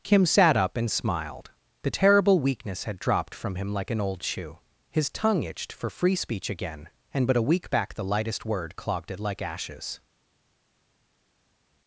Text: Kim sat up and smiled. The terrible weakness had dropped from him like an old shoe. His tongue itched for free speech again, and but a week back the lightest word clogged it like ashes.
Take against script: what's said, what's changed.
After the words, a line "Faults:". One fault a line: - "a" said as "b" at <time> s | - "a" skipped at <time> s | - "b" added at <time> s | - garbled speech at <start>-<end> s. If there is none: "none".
Kim sat up and smiled. The terrible weakness had dropped from him like an old shoe. His tongue itched for free speech again, and but a week back the lightest word clogged it like ashes.
Faults:
none